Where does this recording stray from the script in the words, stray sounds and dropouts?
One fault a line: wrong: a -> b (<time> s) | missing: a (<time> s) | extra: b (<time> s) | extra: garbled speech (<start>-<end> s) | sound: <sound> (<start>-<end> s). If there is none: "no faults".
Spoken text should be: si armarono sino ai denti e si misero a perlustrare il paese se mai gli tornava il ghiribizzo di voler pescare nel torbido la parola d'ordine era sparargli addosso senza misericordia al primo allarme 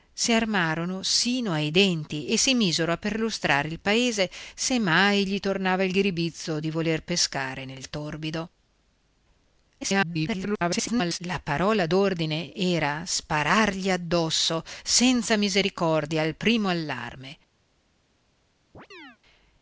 extra: garbled speech (9.8-11.2 s)
sound: chirp (18.7-19.2 s)